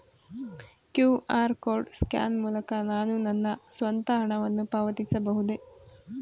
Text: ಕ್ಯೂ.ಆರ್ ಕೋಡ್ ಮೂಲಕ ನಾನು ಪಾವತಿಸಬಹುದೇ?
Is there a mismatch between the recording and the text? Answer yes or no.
yes